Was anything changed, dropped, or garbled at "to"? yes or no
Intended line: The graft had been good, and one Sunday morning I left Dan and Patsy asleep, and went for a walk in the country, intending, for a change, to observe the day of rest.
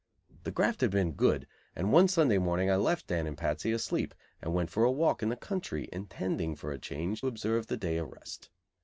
yes